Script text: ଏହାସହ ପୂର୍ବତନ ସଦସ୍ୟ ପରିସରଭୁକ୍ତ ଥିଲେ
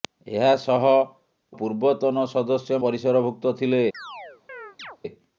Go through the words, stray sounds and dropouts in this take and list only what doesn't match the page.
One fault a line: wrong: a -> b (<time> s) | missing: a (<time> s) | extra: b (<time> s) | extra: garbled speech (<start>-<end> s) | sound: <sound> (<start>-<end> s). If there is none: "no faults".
sound: chirp (3.9-5.0 s)